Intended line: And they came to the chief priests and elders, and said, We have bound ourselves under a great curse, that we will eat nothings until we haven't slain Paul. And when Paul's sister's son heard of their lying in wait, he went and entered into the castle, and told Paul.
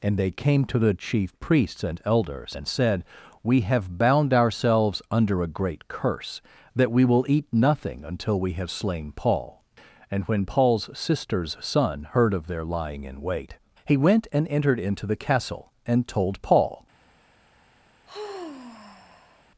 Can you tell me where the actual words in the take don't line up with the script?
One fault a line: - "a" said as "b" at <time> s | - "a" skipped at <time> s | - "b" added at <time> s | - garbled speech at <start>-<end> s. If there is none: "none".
- "nothings" said as "nothing" at 7.5 s
- "haven't" said as "have" at 8.5 s